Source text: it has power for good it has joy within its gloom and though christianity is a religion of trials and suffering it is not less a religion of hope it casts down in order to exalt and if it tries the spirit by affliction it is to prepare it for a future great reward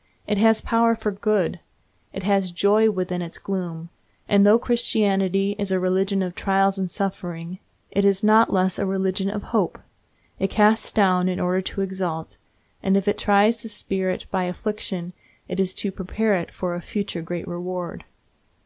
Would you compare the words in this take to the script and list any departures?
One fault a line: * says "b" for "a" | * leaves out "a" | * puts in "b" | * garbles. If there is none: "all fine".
all fine